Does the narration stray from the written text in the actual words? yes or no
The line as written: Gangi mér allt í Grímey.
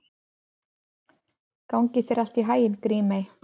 yes